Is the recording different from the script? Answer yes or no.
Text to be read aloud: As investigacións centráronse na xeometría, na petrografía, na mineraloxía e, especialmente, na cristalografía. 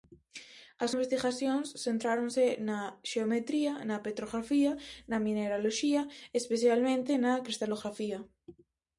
no